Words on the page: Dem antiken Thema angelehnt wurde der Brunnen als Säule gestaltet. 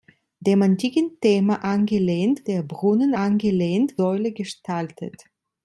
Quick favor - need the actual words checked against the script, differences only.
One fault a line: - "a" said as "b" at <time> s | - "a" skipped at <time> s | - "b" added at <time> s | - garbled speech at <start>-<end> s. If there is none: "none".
- "wurde" skipped at 2.5 s
- "als" said as "angelehnt" at 3.2 s